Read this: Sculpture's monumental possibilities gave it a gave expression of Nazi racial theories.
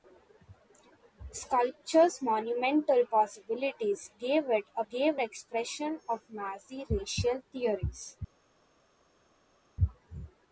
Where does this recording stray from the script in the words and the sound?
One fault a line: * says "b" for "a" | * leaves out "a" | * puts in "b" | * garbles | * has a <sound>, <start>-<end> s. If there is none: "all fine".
all fine